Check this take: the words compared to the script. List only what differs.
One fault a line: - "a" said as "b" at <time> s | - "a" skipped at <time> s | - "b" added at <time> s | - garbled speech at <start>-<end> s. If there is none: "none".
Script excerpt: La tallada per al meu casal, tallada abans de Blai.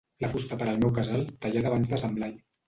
- "tallada" said as "fusta" at 0.3 s
- "Sant" added at 2.1 s